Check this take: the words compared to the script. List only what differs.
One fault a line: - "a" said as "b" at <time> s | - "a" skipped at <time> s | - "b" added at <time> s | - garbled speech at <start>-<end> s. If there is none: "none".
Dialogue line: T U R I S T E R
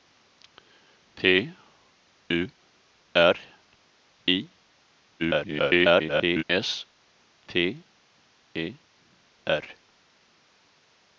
- garbled speech at 5.2-6.4 s